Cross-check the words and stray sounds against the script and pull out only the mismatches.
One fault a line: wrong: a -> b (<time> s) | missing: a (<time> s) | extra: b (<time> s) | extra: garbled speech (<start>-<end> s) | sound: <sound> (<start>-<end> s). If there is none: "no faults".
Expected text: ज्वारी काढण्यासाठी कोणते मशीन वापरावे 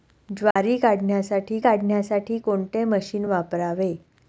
sound: dropout (0.5-0.6 s)
extra: काढण्यासाठी (1.6 s)